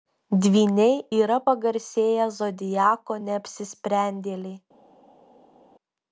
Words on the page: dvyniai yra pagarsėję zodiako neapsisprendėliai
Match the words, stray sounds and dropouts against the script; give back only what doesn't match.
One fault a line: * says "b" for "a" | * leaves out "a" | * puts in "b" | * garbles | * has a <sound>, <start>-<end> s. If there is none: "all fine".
all fine